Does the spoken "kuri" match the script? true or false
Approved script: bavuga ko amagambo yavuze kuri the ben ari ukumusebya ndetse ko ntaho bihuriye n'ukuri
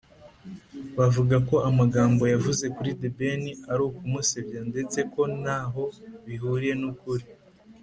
true